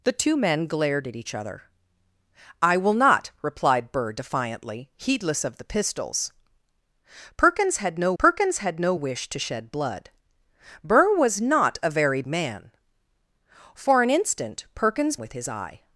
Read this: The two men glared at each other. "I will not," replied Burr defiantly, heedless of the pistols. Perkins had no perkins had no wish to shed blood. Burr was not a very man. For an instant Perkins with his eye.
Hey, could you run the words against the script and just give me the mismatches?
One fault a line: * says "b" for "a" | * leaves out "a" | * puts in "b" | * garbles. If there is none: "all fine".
all fine